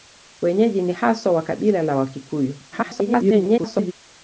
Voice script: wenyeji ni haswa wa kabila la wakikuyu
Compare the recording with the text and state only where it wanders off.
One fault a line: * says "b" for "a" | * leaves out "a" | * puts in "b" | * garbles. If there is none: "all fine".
* garbles